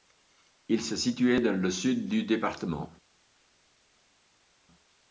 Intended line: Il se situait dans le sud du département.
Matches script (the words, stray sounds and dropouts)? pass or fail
pass